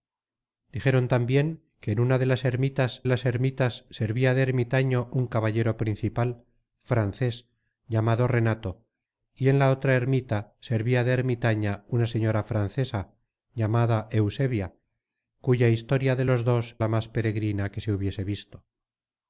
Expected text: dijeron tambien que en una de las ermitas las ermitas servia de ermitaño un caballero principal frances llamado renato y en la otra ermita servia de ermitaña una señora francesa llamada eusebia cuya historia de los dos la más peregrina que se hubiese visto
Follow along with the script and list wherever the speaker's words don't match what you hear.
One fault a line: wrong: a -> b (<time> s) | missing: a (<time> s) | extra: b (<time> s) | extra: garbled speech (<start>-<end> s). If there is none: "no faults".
no faults